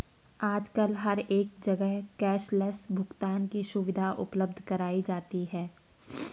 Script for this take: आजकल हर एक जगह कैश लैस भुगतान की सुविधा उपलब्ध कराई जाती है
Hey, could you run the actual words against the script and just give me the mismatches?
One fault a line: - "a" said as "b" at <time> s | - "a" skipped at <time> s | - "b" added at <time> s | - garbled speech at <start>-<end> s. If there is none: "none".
none